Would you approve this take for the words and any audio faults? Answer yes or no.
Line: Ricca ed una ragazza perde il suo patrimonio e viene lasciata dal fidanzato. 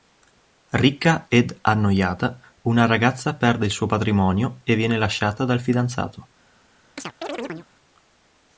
no